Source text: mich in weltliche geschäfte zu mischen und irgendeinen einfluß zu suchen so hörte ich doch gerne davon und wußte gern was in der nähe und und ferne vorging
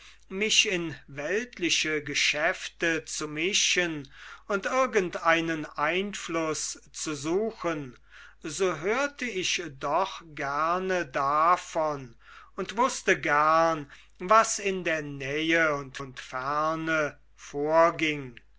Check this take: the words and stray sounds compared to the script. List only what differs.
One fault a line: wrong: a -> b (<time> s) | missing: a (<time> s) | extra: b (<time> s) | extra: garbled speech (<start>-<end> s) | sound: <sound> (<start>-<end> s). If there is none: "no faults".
no faults